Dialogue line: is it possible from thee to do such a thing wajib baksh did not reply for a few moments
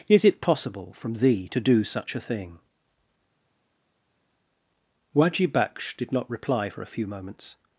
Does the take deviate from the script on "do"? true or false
false